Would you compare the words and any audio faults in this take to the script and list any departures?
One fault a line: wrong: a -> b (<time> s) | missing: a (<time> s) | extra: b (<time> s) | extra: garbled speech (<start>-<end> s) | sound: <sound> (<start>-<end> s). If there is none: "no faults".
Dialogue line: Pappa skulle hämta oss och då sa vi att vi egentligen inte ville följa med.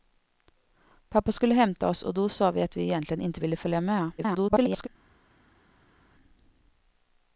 extra: garbled speech (4.2-4.9 s)